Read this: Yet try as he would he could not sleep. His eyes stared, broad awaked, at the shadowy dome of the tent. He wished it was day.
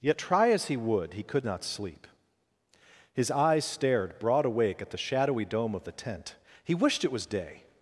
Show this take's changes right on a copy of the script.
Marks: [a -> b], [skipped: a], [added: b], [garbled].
Yet try as he would he could not sleep. His eyes stared, broad [awaked, -> awake] at the shadowy dome of the tent. He wished it was day.